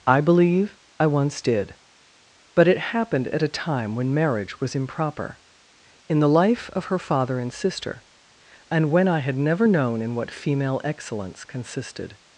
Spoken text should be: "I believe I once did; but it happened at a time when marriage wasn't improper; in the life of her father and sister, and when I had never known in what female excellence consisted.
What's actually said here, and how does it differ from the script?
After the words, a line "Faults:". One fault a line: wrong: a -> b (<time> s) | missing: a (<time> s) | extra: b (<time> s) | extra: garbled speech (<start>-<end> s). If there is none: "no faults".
"I believe I once did; but it happened at a time when marriage was improper; in the life of her father and sister, and when I had never known in what female excellence consisted.
Faults:
wrong: wasn't -> was (4.6 s)